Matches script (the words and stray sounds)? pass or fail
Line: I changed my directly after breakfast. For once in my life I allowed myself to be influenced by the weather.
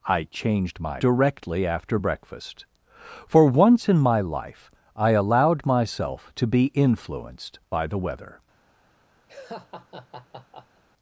fail